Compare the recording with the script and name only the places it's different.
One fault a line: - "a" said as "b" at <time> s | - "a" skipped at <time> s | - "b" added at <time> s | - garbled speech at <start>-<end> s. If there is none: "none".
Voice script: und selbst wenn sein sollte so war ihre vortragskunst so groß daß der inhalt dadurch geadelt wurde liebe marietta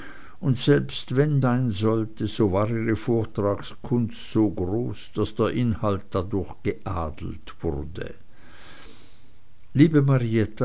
none